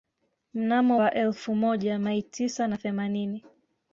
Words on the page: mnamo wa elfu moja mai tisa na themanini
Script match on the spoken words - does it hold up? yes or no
yes